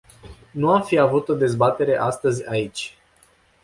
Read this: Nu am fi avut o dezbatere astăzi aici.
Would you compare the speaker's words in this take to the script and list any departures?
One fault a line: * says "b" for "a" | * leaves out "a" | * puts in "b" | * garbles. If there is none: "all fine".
all fine